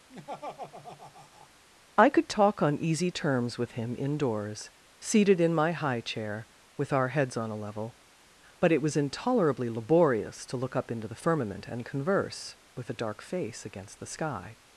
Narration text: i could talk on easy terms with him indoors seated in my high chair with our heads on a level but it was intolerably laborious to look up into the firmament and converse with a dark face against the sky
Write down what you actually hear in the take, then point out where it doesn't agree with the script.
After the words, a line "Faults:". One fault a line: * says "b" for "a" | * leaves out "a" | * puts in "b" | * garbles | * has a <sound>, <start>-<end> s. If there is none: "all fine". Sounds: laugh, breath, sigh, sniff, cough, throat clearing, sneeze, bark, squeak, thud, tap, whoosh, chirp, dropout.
i could talk on easy terms with him indoors seated in my high chair with our heads on a level but it was intolerably laborious to look up into the firmament and converse with a dark face against the sky
Faults:
* has a laugh, 0.1-1.5 s